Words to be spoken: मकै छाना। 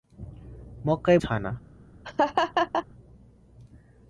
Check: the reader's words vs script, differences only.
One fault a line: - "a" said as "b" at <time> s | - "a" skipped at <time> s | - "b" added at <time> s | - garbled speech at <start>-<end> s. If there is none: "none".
none